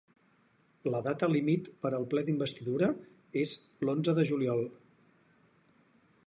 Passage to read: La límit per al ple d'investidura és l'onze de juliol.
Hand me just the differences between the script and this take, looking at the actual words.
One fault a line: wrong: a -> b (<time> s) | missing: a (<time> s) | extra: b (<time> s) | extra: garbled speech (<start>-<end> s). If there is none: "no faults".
extra: data (1.1 s)